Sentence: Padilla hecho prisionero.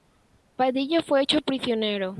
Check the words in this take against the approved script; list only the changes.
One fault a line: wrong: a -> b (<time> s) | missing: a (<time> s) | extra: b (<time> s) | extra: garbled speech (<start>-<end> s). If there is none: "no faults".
extra: fue (1.0 s)